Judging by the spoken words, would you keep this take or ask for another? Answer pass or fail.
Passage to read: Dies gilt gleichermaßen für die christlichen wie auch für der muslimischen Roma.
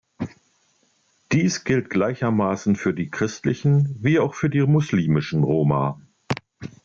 fail